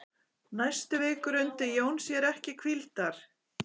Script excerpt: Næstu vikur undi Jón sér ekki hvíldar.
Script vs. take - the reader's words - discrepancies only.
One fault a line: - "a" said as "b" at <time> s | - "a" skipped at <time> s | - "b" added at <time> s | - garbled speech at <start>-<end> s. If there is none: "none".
none